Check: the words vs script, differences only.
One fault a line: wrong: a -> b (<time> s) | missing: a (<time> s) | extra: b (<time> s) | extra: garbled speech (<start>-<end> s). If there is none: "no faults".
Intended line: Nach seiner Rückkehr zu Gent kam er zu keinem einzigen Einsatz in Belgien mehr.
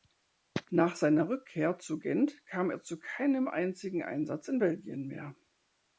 no faults